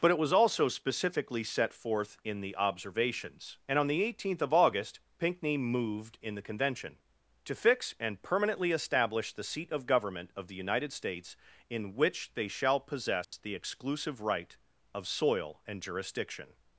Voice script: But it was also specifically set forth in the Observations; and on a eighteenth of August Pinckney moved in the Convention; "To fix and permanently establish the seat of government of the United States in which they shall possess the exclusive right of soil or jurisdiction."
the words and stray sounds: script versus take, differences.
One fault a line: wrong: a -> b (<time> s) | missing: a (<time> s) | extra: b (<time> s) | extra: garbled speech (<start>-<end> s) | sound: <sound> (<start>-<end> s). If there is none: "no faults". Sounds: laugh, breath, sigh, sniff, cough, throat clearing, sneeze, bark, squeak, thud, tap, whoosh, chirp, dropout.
wrong: a -> the (3.9 s)
sound: dropout (13.2-13.3 s)
wrong: or -> and (15.7 s)